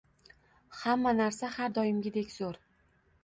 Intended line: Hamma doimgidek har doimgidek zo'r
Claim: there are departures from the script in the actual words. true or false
true